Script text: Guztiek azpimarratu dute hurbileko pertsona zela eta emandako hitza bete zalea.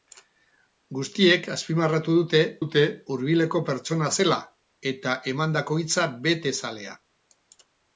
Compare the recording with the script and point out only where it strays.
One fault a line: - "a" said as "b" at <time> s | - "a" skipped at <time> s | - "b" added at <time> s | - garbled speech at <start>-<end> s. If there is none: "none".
- "dute" added at 2.6 s